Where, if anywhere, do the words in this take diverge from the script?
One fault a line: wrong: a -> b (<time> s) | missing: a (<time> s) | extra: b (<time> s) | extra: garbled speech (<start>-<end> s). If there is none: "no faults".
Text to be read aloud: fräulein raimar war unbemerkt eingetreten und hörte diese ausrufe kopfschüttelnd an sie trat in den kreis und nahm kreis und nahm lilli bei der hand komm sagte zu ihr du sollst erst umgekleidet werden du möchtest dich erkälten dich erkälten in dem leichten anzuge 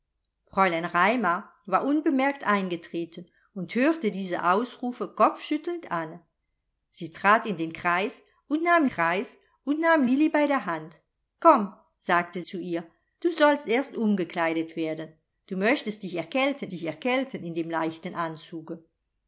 no faults